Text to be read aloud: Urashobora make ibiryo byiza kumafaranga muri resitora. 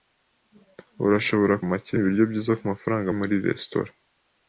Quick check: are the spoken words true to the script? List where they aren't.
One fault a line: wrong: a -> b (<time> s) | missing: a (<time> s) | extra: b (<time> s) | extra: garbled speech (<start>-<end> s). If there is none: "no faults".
no faults